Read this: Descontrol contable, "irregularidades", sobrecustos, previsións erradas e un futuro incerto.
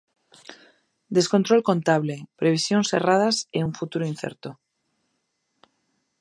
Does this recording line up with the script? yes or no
no